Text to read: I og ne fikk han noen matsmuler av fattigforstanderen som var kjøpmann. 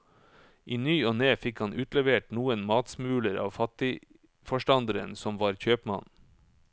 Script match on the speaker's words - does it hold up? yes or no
no